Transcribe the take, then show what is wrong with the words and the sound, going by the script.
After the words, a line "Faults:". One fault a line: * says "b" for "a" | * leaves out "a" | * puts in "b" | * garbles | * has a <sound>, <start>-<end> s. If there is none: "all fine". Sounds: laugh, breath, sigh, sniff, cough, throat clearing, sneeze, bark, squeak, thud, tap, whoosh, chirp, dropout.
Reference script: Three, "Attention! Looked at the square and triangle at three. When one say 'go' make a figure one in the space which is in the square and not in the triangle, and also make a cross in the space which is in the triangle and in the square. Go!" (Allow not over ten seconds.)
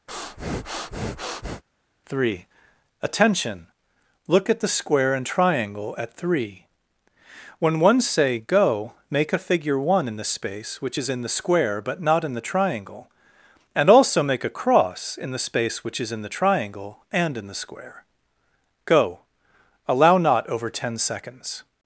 Three, "Attention! Look at the square and triangle at three. When one say 'go' make a figure one in the space which is in the square but not in the triangle, and also make a cross in the space which is in the triangle and in the square. Go!" (Allow not over ten seconds.)
Faults:
* has a breath, 0.1-1.6 s
* says "Look" for "Looked"
* says "but" for "and"